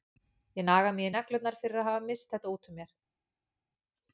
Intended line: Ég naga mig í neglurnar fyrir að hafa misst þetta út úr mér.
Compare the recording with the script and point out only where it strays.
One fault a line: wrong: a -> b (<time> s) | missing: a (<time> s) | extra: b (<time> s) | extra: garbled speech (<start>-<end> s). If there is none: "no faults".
no faults